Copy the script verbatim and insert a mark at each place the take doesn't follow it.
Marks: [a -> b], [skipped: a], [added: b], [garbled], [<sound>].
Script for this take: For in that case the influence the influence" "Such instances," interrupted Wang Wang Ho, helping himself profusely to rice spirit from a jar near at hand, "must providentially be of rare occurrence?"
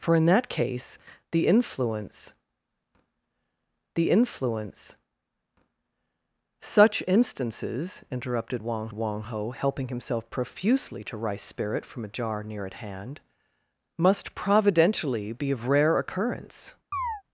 For in that case the influence the influence" "Such instances," interrupted Wang Wang Ho, helping himself profusely to rice spirit from a jar near at hand, "must providentially be of rare occurrence?" [chirp]